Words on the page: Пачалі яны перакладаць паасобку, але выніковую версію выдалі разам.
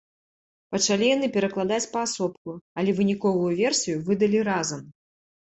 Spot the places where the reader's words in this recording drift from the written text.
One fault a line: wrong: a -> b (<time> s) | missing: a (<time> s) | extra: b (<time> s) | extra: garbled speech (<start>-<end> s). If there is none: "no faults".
no faults